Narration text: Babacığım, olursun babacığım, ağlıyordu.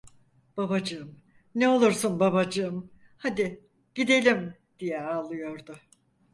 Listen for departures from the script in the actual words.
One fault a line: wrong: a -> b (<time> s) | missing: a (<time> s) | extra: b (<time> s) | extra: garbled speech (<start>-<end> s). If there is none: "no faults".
extra: ne (1.6 s)
extra: hadi gidelim diye (3.2 s)